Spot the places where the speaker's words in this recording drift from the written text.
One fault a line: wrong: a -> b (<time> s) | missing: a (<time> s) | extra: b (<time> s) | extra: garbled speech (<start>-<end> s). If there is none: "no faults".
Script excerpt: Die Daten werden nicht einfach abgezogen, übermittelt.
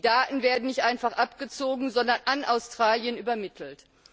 extra: sondern an Australien (1.9 s)